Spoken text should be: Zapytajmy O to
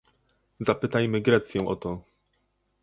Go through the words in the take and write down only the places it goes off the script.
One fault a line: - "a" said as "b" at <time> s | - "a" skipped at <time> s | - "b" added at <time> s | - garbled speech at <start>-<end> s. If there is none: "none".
- "Grecję" added at 1.2 s